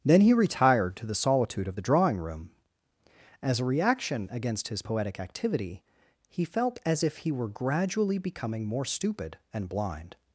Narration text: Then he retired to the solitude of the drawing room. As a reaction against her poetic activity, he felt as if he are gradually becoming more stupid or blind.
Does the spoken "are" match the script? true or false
false